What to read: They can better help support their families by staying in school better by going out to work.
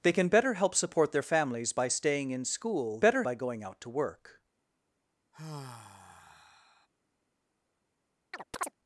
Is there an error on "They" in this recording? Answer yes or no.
no